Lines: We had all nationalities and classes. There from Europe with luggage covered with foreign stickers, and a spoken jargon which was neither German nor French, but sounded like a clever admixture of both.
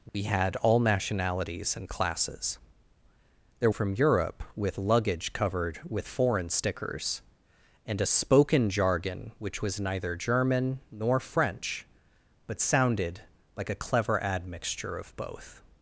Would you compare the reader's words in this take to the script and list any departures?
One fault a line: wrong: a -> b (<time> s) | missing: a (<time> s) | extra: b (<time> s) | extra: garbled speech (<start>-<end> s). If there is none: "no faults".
no faults